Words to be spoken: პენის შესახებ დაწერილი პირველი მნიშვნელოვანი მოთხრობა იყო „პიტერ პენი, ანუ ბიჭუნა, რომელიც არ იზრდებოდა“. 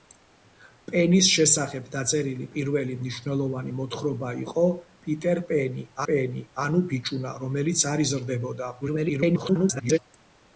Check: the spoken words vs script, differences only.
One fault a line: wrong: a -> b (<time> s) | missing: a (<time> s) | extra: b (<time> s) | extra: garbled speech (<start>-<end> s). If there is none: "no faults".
extra: პენი (6.1 s)
extra: garbled speech (8.8-10.0 s)